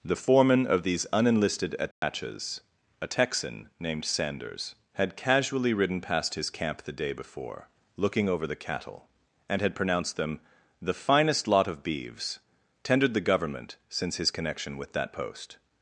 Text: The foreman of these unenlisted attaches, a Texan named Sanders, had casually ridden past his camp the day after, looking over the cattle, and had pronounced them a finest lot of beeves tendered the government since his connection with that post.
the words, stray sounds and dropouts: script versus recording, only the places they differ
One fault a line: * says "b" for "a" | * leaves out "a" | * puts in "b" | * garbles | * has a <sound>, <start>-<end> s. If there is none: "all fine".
* has a dropout, 1.9-2.0 s
* says "before" for "after"
* says "the" for "a"